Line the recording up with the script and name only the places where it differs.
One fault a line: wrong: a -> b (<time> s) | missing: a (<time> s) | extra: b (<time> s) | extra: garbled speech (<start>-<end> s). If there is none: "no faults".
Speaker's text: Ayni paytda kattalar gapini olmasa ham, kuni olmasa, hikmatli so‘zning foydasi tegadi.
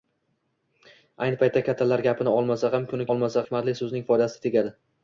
no faults